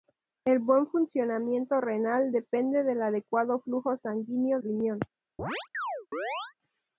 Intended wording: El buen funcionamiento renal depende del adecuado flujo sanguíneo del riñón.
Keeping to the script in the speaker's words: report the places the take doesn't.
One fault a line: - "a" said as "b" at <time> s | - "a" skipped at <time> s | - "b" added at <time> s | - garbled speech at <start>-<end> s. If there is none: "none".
- "del" skipped at 4.6 s